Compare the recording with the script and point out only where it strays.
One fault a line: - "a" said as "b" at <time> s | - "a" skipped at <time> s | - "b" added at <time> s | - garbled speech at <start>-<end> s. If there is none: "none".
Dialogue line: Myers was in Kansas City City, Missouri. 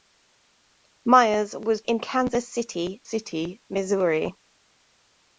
none